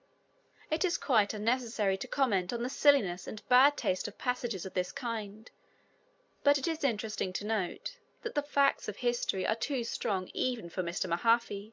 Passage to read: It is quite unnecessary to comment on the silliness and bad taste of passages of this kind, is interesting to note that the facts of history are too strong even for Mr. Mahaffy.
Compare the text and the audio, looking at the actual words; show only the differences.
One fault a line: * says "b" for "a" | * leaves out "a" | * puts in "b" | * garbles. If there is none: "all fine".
* puts in "but it"